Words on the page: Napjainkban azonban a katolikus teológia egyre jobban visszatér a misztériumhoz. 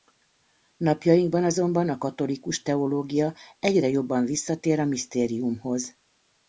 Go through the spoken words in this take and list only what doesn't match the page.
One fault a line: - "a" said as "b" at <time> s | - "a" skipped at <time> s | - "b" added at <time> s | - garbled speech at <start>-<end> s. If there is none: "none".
none